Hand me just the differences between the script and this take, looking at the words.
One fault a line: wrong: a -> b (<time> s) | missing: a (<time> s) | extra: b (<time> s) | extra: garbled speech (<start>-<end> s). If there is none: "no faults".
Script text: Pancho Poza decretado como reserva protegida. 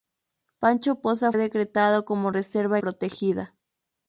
no faults